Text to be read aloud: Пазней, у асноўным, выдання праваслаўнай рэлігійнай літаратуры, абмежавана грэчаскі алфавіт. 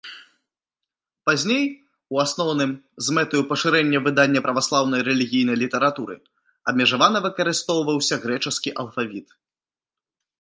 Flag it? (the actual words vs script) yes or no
yes